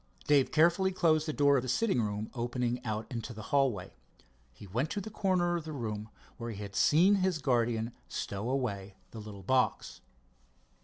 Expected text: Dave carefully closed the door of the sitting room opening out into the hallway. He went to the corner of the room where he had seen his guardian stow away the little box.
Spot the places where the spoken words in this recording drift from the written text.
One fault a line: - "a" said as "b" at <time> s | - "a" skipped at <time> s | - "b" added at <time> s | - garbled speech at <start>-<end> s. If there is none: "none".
none